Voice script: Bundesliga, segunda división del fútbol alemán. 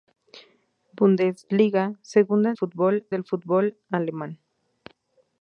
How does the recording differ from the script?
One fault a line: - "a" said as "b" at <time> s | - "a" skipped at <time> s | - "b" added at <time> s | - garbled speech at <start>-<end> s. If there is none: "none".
- "división" said as "fútbol" at 2.5 s